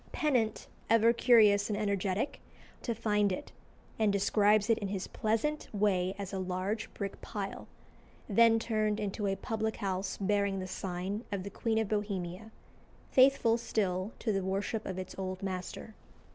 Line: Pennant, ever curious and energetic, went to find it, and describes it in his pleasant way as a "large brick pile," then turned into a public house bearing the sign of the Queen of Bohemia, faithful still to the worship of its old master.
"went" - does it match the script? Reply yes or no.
no